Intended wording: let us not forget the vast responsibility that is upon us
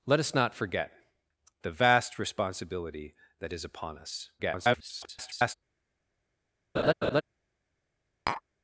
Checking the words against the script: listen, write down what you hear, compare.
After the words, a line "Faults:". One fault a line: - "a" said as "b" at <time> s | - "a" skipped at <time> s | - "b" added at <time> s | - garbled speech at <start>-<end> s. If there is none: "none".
let us not forget the vast responsibility that is upon us [garbled]
Faults:
- garbled speech at 4.4-5.5 s